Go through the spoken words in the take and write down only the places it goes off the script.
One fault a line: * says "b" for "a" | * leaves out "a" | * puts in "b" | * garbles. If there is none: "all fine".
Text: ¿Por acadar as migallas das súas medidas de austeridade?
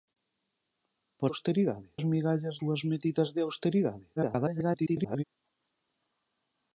* says "austeridade" for "acadar"
* leaves out "das"
* garbles